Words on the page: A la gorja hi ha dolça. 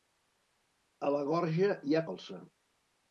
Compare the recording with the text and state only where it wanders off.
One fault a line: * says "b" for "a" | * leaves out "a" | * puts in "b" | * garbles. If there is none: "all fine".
all fine